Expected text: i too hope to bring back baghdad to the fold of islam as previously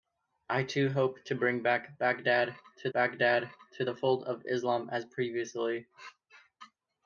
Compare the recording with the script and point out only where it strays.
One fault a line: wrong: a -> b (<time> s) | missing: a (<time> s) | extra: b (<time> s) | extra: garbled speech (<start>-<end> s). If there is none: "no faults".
extra: baghdad to (2.9 s)